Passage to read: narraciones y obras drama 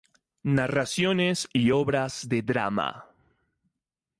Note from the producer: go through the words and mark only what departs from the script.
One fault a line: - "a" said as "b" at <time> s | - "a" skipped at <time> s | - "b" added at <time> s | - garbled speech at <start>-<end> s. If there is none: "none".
- "de" added at 2.3 s